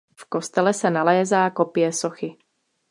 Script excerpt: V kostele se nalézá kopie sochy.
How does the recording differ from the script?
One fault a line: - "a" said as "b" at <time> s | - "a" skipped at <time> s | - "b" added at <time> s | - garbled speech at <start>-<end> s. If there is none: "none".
none